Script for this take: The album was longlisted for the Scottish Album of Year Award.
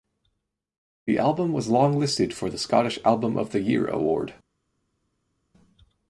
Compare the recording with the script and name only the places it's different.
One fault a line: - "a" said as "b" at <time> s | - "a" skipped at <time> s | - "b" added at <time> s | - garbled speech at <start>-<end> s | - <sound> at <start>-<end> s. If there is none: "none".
- "the" added at 3.5 s